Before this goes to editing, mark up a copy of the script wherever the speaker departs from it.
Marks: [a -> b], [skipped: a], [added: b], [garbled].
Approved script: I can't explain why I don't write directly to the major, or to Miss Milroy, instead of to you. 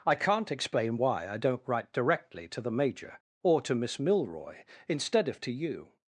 I can't explain why I don't write directly to the major, or to Miss Milroy, instead of to you.